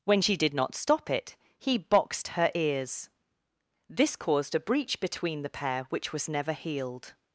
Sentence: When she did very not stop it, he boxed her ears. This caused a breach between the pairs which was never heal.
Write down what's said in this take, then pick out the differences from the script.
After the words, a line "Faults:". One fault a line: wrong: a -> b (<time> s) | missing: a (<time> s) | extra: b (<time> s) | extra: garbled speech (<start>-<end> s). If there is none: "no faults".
When she did not stop it, he boxed her ears. This caused a breach between the pair which was never healed.
Faults:
missing: very (0.5 s)
wrong: pairs -> pair (5.5 s)
wrong: heal -> healed (6.5 s)